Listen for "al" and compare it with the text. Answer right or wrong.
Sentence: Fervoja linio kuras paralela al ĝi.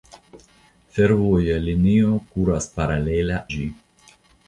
wrong